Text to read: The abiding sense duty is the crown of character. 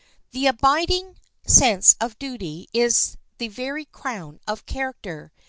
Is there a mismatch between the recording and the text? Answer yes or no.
yes